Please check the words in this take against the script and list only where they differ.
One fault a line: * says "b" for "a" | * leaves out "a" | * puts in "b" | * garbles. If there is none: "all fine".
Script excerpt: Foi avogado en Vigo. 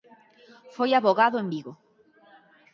all fine